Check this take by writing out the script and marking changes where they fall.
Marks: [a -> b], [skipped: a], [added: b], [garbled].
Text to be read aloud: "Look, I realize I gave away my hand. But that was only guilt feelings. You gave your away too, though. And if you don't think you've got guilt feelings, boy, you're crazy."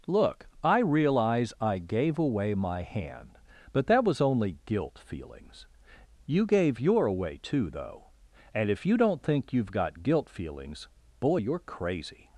"Look, I realize I gave away my hand. But that was only guilt feelings. You gave your away too, though. And if you don't think you've got guilt feelings, boy, you're crazy."